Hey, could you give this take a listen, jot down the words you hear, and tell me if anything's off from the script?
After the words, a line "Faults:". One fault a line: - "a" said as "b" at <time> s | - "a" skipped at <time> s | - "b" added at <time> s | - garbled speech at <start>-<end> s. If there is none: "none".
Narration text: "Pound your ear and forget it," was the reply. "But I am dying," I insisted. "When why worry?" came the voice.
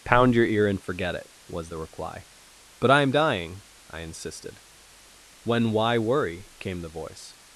"Pound your ear and forget it," was the reply. "But I am dying," I insisted. "When why worry?" came the voice.
Faults:
none